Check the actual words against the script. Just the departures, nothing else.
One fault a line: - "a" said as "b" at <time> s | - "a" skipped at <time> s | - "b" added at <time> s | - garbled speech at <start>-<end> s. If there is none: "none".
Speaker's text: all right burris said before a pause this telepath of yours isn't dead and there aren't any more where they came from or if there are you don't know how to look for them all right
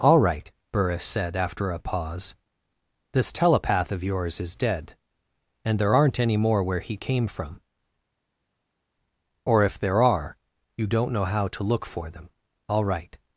- "before" said as "after" at 1.4 s
- "isn't" said as "is" at 4.4 s
- "they" said as "he" at 6.8 s